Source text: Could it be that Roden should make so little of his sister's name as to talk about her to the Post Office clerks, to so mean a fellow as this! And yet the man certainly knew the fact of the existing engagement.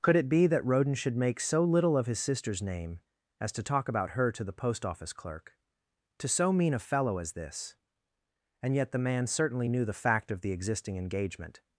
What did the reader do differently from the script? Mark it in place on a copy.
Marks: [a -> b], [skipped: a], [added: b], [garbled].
Could it be that Roden should make so little of his sister's name as to talk about her to the Post Office [clerks, -> clerk] to so mean a fellow as this! And yet the man certainly knew the fact of the existing engagement.